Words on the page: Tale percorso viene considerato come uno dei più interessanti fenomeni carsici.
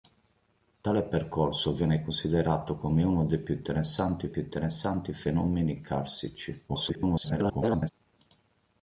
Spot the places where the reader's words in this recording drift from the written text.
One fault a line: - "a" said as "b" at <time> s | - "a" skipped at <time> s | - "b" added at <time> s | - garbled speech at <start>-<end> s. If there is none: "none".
- "più interessanti" added at 4.2 s
- garbled speech at 6.7-7.9 s